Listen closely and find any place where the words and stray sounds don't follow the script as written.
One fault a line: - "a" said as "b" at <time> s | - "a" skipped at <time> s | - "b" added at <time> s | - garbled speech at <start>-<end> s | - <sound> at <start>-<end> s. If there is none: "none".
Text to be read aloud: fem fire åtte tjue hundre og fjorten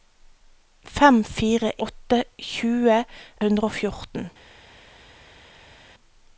none